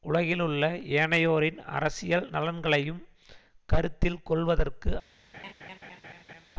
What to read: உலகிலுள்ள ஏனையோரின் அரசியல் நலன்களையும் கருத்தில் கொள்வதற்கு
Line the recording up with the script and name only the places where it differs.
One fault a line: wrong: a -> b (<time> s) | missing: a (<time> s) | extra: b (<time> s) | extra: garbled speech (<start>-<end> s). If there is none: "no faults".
no faults